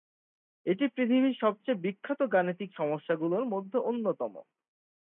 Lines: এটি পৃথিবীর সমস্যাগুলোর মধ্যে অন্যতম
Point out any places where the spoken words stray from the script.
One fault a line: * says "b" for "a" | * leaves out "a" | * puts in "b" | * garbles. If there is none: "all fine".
* puts in "সবচেয়ে বিখ্যাত গাণিতিক"